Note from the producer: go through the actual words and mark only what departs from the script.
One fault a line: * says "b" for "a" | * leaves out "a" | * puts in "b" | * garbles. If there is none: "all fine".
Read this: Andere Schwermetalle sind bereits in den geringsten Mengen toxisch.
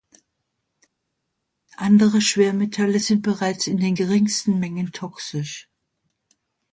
all fine